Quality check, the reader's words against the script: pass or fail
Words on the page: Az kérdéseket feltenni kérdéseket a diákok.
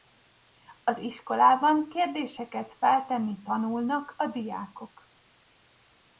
fail